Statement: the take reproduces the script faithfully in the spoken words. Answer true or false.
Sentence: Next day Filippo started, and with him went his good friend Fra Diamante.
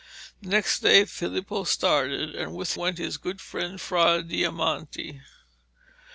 false